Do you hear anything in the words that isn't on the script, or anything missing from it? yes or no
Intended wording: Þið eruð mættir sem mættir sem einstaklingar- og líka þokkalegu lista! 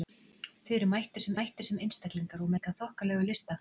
no